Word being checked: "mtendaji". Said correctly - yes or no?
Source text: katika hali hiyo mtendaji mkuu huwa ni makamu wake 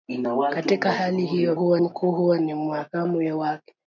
no